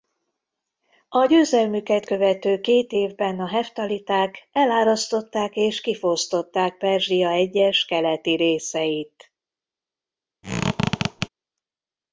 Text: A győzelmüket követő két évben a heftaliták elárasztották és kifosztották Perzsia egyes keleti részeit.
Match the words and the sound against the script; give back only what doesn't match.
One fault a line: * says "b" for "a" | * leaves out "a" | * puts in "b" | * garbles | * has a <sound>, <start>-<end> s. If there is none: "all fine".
* has a squeak, 10.4-11.3 s